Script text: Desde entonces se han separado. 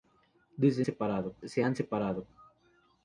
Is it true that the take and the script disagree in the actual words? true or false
true